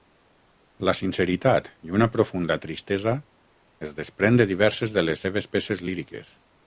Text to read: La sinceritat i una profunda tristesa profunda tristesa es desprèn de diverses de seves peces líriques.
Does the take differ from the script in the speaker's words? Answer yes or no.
yes